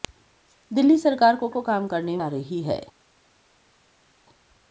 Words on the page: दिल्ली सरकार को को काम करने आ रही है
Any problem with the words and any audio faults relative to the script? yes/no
no